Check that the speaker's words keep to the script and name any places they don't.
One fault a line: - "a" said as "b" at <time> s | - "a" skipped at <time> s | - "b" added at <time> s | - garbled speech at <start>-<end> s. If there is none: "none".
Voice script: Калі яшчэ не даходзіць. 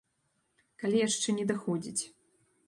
none